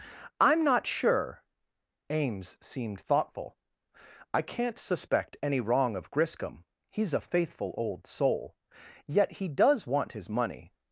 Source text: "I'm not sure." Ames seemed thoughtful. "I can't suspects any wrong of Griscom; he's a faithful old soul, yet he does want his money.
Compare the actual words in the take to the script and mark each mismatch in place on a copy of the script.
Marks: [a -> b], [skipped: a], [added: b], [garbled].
"I'm not sure." Ames seemed thoughtful. "I can't [suspects -> suspect] any wrong of Griscom; he's a faithful old soul, yet he does want his money.